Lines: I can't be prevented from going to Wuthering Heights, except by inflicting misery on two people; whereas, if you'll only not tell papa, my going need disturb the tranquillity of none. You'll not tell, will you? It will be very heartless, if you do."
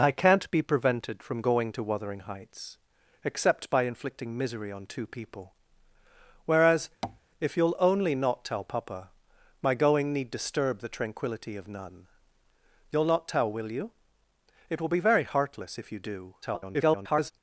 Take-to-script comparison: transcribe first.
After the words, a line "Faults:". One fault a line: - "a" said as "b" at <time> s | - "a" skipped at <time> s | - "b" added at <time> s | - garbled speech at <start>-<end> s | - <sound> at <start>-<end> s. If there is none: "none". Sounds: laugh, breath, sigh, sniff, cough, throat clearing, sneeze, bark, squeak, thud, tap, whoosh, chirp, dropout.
I can't be prevented from going to Wuthering Heights, except by inflicting misery on two people; whereas, if you'll only not tell papa, my going need disturb the tranquillity of none. You'll not tell, will you? It will be very heartless, if you do." [garbled]
Faults:
- tap at 7.0-7.2 s
- garbled speech at 16.4-17.3 s